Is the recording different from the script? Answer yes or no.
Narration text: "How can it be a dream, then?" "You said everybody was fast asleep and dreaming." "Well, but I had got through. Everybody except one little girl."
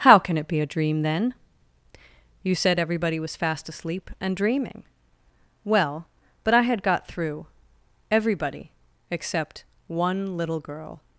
no